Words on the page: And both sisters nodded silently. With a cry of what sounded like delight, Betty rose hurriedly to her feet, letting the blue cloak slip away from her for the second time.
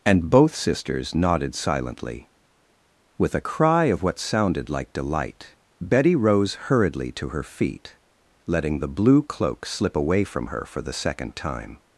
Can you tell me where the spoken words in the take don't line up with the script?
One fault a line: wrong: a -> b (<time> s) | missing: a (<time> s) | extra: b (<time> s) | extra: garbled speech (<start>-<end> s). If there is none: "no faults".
no faults